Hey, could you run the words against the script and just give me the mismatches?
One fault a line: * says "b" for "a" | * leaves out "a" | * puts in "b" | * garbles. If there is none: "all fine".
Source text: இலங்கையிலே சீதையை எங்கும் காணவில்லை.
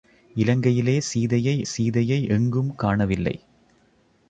* puts in "சீதையை"